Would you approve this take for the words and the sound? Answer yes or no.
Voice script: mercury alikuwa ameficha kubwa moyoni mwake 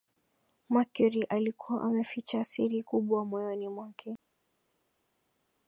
no